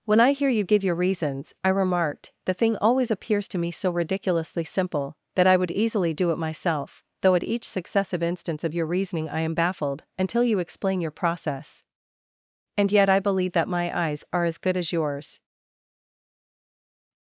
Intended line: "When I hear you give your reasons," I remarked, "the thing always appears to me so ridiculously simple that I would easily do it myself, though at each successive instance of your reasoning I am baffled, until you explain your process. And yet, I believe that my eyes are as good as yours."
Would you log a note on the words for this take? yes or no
no